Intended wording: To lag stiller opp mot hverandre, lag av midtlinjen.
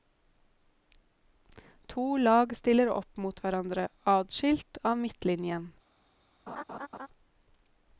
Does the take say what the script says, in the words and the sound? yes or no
no